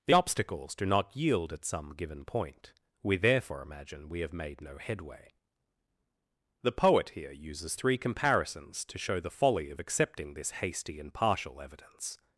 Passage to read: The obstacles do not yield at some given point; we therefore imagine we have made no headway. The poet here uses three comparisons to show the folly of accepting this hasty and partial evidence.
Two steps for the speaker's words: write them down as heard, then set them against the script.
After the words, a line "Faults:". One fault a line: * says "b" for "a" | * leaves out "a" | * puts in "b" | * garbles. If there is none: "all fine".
The obstacles do not yield at some given point; we therefore imagine we have made no headway. The poet here uses three comparisons to show the folly of accepting this hasty and partial evidence.
Faults:
all fine